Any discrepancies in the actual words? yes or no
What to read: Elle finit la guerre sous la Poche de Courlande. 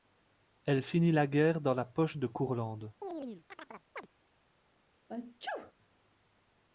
yes